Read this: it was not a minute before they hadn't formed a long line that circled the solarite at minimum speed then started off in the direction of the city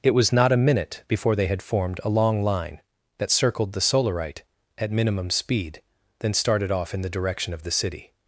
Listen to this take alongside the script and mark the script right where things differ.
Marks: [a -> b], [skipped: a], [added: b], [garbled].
it was not a minute before they [hadn't -> had] formed a long line that circled the solarite at minimum speed then started off in the direction of the city